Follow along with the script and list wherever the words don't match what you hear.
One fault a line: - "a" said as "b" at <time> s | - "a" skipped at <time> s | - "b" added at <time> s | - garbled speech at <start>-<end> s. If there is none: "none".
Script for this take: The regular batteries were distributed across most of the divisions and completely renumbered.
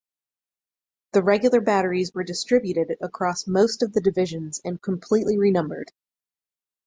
none